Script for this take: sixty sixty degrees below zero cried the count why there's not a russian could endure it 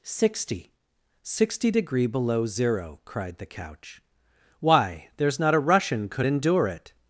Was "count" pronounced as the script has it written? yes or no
no